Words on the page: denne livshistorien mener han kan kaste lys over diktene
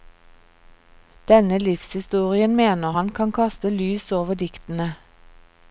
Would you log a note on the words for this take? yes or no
no